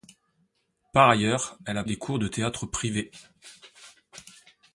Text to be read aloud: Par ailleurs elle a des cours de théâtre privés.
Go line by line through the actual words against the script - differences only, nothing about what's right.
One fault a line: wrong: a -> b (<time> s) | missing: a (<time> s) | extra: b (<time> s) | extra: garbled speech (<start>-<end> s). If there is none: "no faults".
no faults